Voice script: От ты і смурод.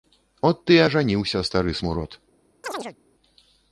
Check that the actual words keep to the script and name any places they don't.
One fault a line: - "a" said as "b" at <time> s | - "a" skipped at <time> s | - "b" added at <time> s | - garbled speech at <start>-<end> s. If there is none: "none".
- "ажаніўся стары" added at 0.8 s